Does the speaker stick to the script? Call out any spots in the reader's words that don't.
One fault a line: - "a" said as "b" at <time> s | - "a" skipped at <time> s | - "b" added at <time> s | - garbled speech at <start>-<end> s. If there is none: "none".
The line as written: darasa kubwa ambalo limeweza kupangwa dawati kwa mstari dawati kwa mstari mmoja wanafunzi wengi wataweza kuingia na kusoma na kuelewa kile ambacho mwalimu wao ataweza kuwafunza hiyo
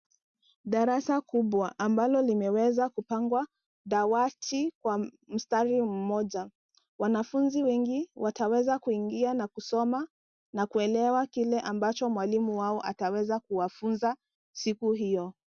- "dawati kwa mstari" skipped at 5.8 s
- "siku" added at 14.5 s